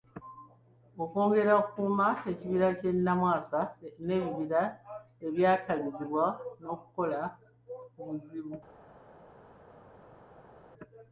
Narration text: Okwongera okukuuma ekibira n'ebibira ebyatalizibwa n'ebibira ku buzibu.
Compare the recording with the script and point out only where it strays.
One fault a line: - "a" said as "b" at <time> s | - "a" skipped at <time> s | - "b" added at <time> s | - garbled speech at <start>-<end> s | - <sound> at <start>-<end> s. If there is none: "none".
- "ky'e Namwasa" added at 2.8 s
- "n'ebibira" said as "n'okukola" at 6.6 s